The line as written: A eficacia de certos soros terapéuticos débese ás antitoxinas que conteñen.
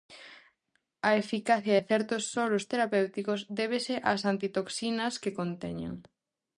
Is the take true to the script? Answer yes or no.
yes